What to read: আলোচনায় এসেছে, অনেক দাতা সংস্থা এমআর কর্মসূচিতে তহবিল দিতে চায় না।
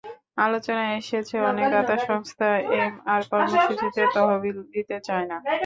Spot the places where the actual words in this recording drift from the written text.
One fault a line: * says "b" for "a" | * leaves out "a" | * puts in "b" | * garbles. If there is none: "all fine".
all fine